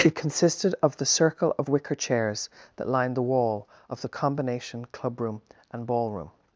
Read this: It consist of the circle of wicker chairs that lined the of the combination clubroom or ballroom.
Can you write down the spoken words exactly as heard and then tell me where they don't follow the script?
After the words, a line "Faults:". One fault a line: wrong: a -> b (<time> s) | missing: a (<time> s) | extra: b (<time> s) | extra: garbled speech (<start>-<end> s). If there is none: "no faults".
It consisted of the circle of wicker chairs that lined the wall of the combination clubroom and ballroom.
Faults:
wrong: consist -> consisted (0.1 s)
extra: wall (3.2 s)
wrong: or -> and (5.7 s)